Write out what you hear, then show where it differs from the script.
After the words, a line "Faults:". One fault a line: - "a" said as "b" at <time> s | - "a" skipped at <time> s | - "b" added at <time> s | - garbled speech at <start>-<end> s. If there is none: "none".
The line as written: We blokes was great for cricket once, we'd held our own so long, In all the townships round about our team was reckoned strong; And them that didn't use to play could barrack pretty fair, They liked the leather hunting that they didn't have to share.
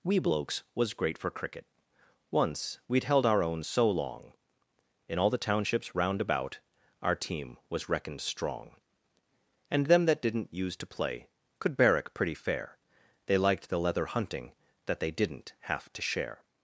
We blokes was great for cricket once, we'd held our own so long, In all the townships round about our team was reckoned strong; And them that didn't use to play could barrack pretty fair, They liked the leather hunting that they didn't have to share.
Faults:
none